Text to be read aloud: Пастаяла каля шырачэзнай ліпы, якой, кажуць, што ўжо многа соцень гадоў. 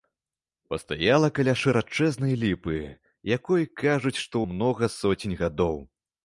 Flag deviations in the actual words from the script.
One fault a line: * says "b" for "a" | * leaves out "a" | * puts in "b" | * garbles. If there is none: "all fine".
* leaves out "ўжо"